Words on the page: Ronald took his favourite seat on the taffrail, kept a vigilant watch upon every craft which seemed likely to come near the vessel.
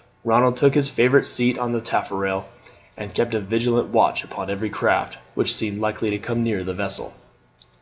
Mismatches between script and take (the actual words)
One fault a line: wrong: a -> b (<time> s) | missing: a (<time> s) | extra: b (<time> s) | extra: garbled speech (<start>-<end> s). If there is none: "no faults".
extra: and (3.0 s)